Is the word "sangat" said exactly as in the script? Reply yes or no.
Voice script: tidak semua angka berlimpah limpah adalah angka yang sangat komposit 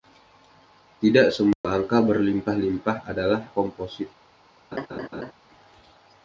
no